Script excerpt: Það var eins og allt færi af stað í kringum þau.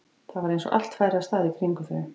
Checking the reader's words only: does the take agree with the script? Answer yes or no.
yes